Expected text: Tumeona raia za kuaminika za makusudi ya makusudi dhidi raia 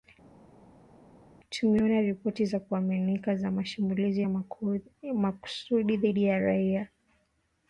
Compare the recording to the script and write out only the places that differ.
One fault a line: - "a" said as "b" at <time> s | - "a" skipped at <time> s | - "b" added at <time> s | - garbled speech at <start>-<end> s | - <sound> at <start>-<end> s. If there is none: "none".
- "raia" said as "ripoti" at 2.0 s
- "makusudi" said as "mashambulizi" at 3.5 s
- "ya" added at 6.2 s